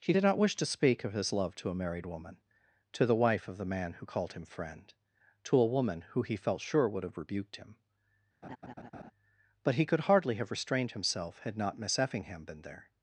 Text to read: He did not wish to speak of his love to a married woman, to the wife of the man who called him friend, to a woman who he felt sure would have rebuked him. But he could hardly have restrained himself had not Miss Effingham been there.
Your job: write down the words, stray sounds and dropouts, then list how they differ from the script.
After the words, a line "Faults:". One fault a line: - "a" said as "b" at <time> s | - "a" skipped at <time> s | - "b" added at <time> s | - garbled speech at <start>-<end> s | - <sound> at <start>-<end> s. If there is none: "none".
He did not wish to speak of his love to a married woman, to the wife of the man who called him friend, to a woman who he felt sure would have rebuked him. But he could hardly have restrained himself had not Miss Effingham been there.
Faults:
- laugh at 8.4-9.1 s